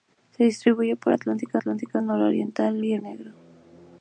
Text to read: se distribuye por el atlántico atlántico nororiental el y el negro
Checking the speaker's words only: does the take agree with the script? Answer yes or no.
yes